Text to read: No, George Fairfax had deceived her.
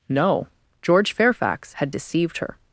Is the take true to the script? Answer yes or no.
yes